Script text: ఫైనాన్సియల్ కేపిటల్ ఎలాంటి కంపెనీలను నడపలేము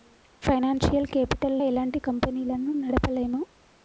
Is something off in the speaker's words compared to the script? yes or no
no